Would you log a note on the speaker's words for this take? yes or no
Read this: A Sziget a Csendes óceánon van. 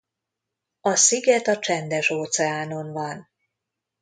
no